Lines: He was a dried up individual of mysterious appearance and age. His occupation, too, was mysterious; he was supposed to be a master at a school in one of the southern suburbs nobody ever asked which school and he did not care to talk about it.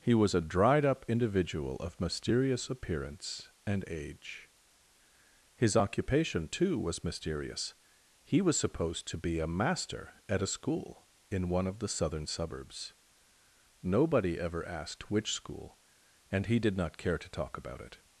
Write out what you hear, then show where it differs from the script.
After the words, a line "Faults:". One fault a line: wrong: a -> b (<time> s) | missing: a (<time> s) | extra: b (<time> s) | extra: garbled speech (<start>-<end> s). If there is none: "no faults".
He was a dried up individual of mysterious appearance and age. His occupation, too, was mysterious; he was supposed to be a master at a school in one of the southern suburbs nobody ever asked which school and he did not care to talk about it.
Faults:
no faults